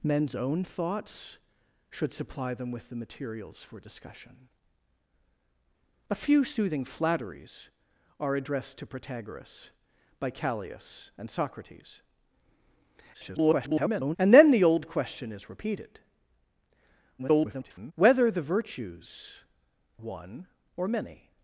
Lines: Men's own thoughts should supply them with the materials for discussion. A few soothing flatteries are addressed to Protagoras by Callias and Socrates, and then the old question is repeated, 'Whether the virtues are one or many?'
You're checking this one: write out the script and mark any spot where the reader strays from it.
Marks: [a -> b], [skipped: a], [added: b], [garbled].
Men's own thoughts should supply them with the materials for discussion. A few soothing flatteries are addressed to Protagoras by Callias and Socrates, [garbled] and then the old question is repeated, [garbled] 'Whether the virtues [skipped: are] one or many?'